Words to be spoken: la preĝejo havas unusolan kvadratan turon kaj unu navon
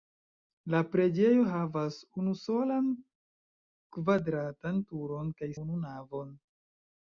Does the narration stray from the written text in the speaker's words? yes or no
no